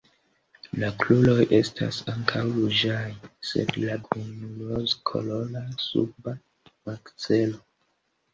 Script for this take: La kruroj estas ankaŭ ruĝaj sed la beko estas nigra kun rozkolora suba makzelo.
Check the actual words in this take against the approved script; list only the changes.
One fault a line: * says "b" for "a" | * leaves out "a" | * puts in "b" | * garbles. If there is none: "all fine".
* leaves out "beko estas nigra"